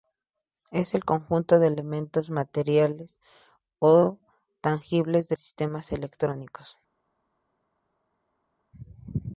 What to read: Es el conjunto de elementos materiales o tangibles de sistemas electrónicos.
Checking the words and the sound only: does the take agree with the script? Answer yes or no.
yes